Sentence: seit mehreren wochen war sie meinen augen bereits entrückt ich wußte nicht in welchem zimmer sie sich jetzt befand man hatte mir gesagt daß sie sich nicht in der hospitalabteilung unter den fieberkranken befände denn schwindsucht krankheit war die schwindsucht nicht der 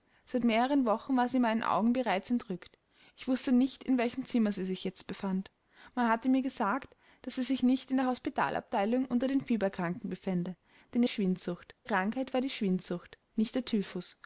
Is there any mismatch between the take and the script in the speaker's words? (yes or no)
no